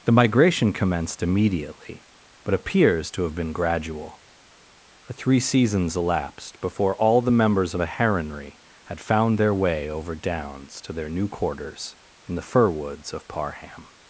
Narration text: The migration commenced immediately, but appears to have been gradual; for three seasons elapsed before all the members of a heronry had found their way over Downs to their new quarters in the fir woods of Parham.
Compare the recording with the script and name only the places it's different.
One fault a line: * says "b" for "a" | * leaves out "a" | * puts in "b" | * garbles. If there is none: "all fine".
all fine